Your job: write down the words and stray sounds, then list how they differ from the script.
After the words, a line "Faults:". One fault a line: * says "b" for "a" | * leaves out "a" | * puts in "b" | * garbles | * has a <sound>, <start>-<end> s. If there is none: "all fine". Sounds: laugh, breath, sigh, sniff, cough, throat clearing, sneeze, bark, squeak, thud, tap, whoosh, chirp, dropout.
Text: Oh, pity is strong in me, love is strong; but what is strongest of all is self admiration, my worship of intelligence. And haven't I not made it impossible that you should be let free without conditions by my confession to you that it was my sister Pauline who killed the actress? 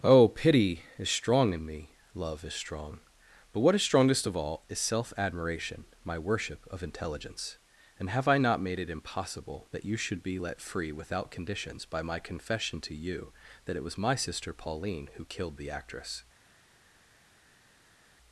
Oh, pity is strong in me, love is strong; but what is strongest of all is self admiration, my worship of intelligence. And have I not made it impossible that you should be let free without conditions by my confession to you that it was my sister Pauline who killed the actress?
Faults:
* says "have" for "haven't"